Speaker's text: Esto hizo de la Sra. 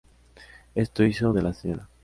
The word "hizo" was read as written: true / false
true